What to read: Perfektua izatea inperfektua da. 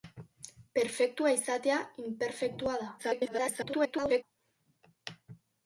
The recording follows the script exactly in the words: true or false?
false